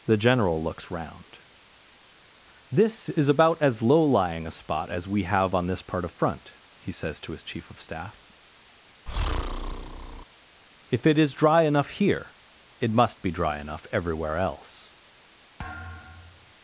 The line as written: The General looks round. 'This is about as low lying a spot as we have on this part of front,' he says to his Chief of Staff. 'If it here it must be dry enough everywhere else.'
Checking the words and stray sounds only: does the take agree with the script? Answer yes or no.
no